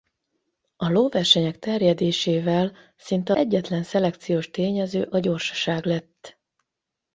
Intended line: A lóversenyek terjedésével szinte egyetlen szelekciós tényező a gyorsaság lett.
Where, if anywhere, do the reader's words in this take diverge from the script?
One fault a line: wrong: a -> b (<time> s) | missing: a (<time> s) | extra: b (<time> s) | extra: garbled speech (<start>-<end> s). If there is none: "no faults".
no faults